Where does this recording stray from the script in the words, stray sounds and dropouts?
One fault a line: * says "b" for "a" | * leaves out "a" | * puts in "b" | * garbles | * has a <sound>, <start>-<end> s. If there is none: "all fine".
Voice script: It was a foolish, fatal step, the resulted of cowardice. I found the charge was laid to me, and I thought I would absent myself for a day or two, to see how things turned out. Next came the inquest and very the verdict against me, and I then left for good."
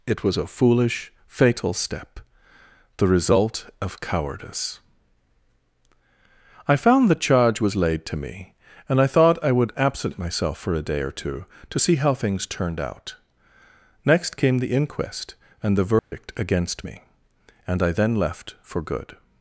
* says "result" for "resulted"
* leaves out "very"
* has a dropout, 16.0-16.1 s